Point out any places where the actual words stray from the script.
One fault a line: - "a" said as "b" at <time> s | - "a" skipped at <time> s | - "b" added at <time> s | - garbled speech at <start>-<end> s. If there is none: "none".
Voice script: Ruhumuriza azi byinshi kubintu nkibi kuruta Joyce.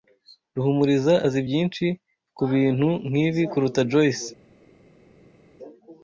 none